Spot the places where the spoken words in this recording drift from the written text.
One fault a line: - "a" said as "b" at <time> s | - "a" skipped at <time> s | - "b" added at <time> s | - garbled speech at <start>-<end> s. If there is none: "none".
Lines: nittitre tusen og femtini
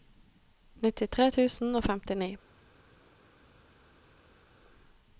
none